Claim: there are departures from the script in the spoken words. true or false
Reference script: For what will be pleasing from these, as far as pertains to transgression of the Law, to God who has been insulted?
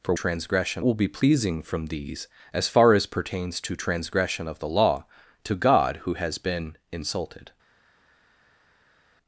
true